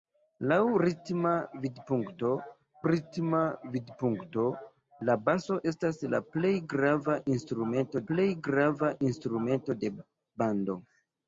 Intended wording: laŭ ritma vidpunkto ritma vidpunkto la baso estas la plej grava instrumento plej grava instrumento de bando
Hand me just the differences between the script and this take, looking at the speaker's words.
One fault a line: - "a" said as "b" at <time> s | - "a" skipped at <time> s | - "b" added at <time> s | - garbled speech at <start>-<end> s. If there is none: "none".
none